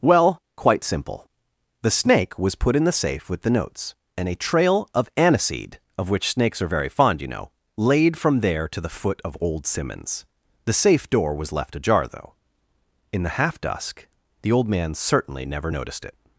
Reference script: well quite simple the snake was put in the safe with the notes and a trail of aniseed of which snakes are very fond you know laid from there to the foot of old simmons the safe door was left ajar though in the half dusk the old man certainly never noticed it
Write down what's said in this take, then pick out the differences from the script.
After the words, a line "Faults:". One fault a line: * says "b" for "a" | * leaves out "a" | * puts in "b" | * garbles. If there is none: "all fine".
well quite simple the snake was put in the safe with the notes and a trail of aniseed of which snakes are very fond you know laid from there to the foot of old simmons the safe door was left ajar though in the half dusk the old man certainly never noticed it
Faults:
all fine